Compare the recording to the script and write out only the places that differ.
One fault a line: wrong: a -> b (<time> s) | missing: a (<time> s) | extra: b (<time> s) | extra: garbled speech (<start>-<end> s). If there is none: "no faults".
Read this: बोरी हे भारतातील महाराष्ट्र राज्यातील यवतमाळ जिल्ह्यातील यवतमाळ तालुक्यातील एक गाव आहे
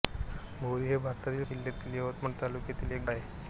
missing: महाराष्ट्र राज्यातील यवतमाळ (1.4 s)
missing: गाव (3.1 s)